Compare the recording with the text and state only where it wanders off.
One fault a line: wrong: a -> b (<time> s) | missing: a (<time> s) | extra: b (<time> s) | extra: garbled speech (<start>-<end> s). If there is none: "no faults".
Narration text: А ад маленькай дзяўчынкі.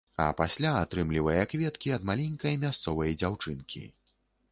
extra: пасля атрымлівае кветкі (0.4 s)
extra: мясцовай (2.6 s)